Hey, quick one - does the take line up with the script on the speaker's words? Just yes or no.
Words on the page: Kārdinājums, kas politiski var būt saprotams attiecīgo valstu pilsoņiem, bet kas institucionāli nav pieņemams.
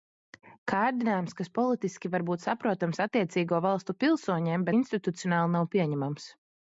no